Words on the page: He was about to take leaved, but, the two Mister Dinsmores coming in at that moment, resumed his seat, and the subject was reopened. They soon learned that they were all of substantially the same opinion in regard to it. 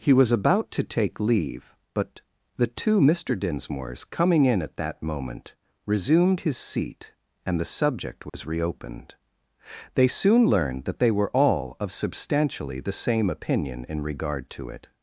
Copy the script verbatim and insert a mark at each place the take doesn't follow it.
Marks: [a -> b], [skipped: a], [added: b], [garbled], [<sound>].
He was about to take [leaved, -> leave] but, the two Mister Dinsmores coming in at that moment, resumed his seat, and the subject was [dropout] reopened. They soon learned that they were all of substantially the same opinion in regard to it.